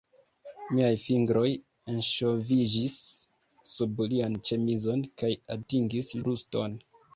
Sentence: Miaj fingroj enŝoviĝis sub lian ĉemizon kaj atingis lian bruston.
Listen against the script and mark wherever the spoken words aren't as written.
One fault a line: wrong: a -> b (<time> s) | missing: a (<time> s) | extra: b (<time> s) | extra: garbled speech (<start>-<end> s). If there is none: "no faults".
missing: lian (6.1 s)